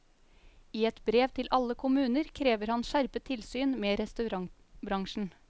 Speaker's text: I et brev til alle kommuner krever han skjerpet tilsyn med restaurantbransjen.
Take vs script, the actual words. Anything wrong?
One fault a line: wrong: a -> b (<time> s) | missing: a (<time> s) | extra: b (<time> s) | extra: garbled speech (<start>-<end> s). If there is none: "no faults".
no faults